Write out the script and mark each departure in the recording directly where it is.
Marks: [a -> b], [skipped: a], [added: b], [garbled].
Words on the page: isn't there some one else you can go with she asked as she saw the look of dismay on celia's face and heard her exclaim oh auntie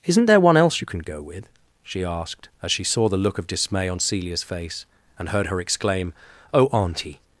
isn't there [skipped: some] one else you can go with she asked as she saw the look of dismay on celia's face and heard her exclaim oh auntie